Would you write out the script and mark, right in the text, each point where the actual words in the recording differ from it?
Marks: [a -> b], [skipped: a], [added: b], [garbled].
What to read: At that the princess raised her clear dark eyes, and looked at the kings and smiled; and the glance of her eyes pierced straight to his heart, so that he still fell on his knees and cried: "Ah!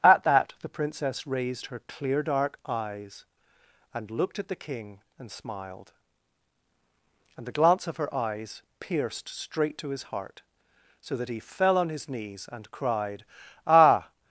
At that the princess raised her clear dark eyes, and looked at the [kings -> king] and smiled; and the glance of her eyes pierced straight to his heart, so that he [skipped: still] fell on his knees and cried: "Ah!